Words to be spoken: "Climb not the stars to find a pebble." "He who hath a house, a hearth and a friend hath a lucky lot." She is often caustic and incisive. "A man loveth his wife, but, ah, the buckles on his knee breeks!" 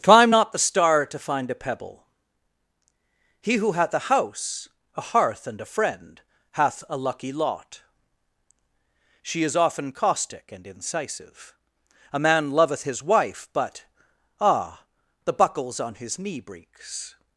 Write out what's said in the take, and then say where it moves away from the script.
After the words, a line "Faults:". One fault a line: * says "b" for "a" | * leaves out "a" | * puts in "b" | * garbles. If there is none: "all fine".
"Climb not the star to find a pebble." "He who hath a house, a hearth and a friend hath a lucky lot." She is often caustic and incisive. "A man loveth his wife, but, ah, the buckles on his knee breeks!"
Faults:
* says "star" for "stars"